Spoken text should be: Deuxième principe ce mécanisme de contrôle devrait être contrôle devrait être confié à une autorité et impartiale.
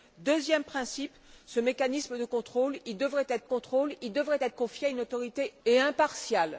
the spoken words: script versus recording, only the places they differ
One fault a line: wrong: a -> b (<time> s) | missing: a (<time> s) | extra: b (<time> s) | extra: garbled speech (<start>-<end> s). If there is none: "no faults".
no faults